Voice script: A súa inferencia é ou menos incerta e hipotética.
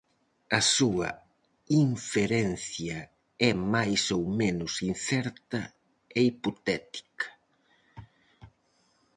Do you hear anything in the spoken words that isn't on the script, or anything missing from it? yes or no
yes